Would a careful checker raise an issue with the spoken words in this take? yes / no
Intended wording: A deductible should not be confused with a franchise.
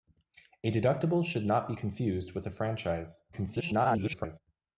yes